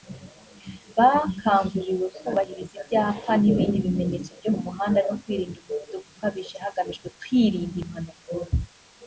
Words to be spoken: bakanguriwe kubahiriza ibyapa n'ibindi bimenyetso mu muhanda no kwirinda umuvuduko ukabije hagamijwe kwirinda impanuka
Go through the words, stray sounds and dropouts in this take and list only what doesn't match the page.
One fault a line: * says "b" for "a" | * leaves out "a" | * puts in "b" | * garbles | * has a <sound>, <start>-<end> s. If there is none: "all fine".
* puts in "byo"